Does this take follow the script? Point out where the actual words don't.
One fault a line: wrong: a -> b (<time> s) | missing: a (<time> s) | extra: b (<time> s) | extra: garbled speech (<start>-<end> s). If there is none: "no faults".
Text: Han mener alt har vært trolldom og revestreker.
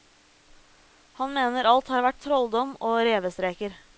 no faults